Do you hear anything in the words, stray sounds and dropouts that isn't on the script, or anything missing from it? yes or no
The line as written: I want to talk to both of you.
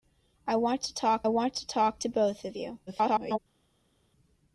yes